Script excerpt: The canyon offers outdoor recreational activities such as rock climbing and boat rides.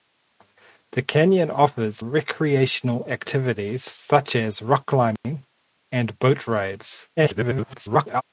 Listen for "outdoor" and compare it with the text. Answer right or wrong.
wrong